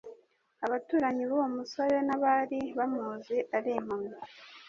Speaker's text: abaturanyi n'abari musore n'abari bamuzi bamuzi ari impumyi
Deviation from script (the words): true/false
true